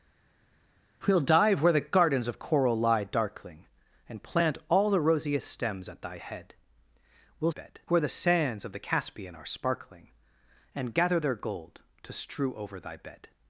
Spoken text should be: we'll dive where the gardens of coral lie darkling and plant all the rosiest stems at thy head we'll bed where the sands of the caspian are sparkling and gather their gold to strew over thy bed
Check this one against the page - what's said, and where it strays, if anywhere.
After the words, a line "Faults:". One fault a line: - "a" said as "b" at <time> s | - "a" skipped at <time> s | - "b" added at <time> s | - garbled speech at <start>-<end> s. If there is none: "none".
we'll dive where the gardens of coral lie darkling and plant all the rosiest stems at thy head we'll bed where the sands of the caspian are sparkling and gather their gold to strew over thy bed
Faults:
none